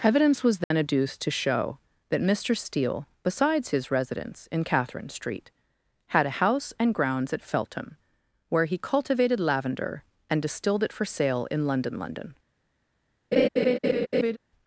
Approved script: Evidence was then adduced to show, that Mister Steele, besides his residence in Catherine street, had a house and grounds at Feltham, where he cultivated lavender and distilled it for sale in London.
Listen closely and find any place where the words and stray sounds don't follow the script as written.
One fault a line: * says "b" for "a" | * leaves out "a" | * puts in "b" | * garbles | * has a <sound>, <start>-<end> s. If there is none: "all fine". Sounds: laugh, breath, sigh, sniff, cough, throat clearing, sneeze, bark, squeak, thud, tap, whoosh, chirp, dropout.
* has a dropout, 0.6-0.7 s
* puts in "London"
* has a laugh, 13.3-14.4 s